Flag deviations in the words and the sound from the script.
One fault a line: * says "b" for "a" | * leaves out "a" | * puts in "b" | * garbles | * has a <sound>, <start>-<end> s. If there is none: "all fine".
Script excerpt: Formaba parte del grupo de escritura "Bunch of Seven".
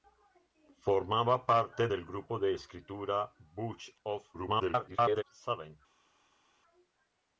* garbles